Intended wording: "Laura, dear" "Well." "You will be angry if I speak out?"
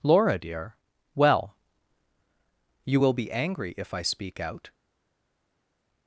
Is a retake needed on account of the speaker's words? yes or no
no